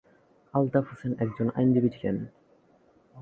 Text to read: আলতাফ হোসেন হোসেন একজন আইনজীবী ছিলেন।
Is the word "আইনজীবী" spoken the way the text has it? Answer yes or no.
yes